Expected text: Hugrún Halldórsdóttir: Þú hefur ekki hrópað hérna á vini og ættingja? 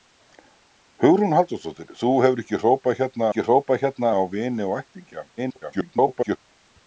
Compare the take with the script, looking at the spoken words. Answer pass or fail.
fail